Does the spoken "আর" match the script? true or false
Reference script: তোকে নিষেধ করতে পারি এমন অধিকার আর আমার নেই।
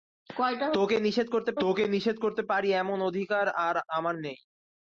true